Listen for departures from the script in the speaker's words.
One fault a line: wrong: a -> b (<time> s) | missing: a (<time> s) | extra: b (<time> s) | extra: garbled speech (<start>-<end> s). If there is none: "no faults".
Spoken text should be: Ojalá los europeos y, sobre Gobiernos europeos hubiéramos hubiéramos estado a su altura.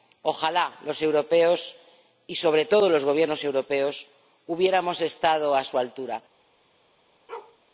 extra: todo los (2.6 s)
missing: hubiéramos (5.0 s)